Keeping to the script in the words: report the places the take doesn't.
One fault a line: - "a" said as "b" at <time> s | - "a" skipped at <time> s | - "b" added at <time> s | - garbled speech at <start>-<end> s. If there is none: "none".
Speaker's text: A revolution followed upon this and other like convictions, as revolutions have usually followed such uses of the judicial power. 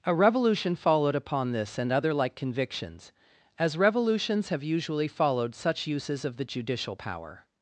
none